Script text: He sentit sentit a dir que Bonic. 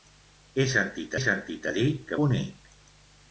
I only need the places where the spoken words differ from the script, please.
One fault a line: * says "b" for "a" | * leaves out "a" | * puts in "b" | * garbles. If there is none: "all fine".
all fine